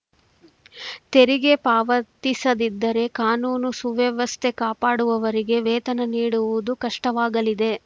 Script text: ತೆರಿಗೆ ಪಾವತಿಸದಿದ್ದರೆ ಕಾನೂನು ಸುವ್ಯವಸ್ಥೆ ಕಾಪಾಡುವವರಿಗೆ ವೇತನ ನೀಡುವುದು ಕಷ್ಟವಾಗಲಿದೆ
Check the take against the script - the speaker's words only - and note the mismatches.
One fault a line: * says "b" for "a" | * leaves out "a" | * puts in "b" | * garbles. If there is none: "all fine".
all fine